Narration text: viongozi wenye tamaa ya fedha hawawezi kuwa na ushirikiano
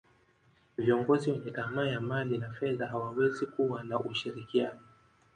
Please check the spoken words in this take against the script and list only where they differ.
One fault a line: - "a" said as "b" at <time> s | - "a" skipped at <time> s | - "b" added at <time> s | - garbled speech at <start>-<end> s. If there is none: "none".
- "mali na" added at 2.0 s